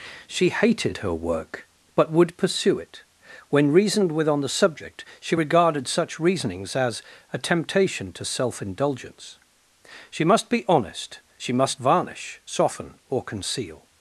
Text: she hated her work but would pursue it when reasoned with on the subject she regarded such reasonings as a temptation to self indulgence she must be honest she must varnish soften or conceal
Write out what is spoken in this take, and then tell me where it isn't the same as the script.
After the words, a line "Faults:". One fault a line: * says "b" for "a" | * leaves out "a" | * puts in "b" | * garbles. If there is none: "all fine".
she hated her work but would pursue it when reasoned with on the subject she regarded such reasonings as a temptation to self indulgence she must be honest she must varnish soften or conceal
Faults:
all fine